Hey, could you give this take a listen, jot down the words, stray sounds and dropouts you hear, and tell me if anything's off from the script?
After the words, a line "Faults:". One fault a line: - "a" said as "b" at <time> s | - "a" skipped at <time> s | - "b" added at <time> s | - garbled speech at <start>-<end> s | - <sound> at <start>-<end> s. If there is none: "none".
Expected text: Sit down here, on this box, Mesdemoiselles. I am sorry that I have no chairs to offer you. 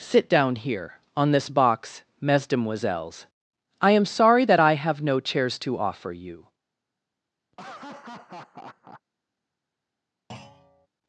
Sit down here, on this box, Mesdemoiselles. I am sorry that I have no chairs to offer you.
Faults:
- laugh at 7.5-9.0 s
- thud at 10.3-10.9 s